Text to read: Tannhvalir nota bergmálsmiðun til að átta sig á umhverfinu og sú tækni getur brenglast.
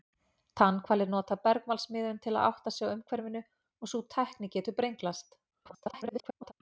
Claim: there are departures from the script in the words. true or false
true